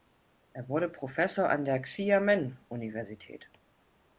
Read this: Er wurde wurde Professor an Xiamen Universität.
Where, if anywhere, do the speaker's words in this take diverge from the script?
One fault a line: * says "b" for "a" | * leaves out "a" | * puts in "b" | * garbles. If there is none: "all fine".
* leaves out "wurde"
* puts in "der"